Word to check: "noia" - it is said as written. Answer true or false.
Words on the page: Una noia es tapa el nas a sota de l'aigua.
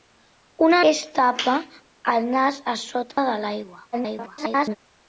false